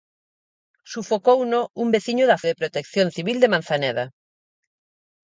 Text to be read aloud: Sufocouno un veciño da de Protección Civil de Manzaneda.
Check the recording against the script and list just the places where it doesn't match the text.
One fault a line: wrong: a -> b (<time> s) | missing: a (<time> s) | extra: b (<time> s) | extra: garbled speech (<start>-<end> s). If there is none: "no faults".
no faults